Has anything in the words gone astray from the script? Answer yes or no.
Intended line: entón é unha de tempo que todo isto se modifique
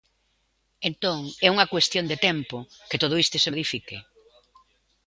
yes